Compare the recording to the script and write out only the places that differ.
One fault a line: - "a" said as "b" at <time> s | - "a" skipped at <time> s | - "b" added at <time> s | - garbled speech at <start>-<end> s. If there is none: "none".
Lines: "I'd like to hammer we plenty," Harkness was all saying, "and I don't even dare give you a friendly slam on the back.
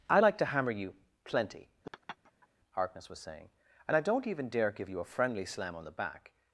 - "we" said as "you" at 0.7 s
- "all" skipped at 3.2 s